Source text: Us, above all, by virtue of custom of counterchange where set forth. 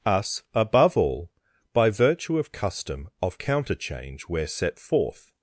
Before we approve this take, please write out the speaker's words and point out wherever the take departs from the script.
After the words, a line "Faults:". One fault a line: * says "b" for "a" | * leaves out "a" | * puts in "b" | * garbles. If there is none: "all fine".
Us, above all, by virtue of custom of counterchange where set forth.
Faults:
all fine